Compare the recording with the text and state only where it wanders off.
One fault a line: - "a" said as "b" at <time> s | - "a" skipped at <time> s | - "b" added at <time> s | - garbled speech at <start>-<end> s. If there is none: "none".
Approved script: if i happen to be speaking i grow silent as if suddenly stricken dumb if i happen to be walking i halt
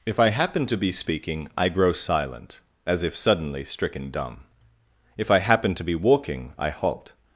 none